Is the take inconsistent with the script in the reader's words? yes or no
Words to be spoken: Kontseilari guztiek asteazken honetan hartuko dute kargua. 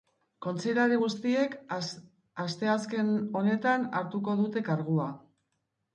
no